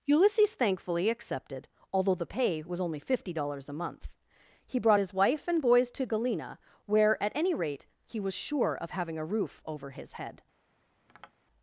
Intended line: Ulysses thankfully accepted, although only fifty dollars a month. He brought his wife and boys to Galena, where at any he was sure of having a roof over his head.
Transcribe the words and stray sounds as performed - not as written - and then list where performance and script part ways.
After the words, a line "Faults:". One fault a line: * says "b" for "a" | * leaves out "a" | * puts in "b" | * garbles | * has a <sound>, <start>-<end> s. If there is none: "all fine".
Ulysses thankfully accepted, although the pay was only fifty dollars a month. He brought his wife and boys to Galena, where at any rate he was sure of having a roof over his head.
Faults:
* puts in "the pay was"
* puts in "rate"
* has a tap, 11.1-11.3 s